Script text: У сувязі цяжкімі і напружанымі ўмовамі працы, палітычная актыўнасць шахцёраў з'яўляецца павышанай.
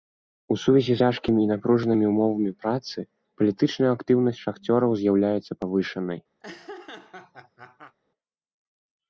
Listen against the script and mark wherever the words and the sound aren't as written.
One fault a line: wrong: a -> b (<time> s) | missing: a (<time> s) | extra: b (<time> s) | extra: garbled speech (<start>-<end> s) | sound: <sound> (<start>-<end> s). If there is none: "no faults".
sound: laugh (6.4-8.0 s)